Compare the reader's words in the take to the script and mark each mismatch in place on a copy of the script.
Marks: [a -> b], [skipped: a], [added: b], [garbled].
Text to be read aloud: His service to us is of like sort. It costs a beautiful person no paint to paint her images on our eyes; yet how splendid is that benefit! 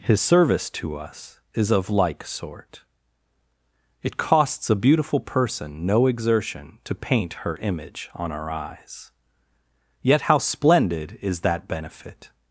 His service to us is of like sort. It costs a beautiful person no [paint -> exertion] to paint her [images -> image] on our eyes; yet how splendid is that benefit!